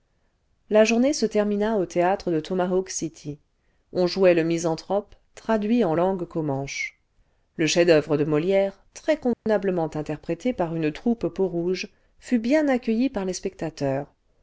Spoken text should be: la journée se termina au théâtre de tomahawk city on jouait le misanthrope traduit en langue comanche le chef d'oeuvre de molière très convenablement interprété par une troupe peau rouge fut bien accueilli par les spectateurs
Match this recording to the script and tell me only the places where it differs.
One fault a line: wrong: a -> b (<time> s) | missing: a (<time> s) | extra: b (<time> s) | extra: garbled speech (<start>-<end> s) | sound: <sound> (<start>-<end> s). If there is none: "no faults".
sound: dropout (9.3-9.5 s)